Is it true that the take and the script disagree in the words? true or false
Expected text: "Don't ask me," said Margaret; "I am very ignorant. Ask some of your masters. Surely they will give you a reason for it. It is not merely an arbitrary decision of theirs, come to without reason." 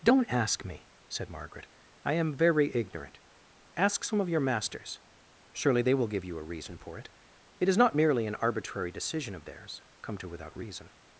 false